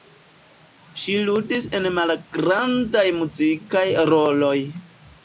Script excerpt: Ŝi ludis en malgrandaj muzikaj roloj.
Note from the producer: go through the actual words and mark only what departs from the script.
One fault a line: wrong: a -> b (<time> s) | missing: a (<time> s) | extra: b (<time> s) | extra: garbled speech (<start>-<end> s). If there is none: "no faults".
no faults